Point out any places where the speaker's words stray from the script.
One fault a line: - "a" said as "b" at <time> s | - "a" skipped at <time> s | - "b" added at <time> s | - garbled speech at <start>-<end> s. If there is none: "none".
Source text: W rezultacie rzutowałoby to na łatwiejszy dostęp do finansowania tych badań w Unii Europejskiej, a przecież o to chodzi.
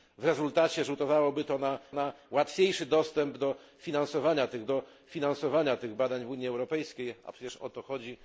- "na" added at 1.9 s
- "do finansowania tych" added at 4.7 s